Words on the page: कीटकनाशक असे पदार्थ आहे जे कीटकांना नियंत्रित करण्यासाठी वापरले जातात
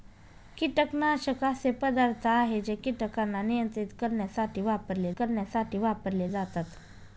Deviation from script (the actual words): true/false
true